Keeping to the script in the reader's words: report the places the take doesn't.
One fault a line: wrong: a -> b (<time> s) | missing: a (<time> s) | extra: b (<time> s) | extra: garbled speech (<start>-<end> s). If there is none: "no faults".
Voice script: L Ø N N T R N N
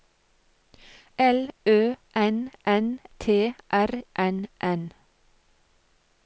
no faults